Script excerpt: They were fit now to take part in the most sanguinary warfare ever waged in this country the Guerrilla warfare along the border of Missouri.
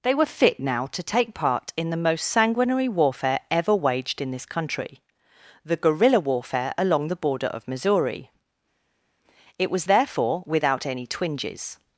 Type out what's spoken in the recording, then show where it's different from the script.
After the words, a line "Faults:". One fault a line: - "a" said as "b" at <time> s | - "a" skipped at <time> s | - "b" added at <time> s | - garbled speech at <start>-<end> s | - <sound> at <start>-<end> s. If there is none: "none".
They were fit now to take part in the most sanguinary warfare ever waged in this country the Guerrilla warfare along the border of Missouri. It was therefore without any twinges
Faults:
- "It was therefore without any twinges" added at 9.6 s